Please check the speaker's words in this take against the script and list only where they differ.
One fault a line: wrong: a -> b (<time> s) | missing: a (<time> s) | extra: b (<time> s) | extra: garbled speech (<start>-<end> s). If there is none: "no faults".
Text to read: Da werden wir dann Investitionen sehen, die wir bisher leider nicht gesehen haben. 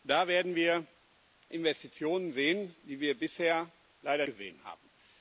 missing: dann (0.9 s)
missing: nicht (4.3 s)